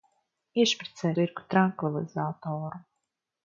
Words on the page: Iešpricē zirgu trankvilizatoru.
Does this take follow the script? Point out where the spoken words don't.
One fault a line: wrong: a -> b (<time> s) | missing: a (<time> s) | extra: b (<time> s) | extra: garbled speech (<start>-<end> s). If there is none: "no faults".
no faults